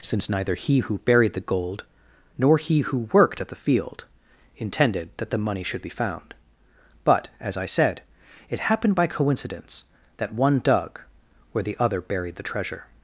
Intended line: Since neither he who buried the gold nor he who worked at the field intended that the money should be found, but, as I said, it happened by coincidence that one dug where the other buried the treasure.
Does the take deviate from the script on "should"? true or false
false